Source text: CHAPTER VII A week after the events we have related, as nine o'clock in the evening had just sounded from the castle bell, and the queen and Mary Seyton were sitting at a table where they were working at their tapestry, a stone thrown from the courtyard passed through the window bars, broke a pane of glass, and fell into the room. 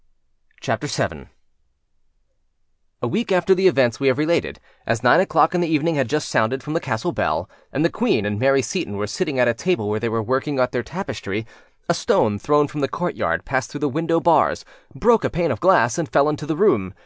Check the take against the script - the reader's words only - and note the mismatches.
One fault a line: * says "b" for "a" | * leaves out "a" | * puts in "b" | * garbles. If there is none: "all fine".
all fine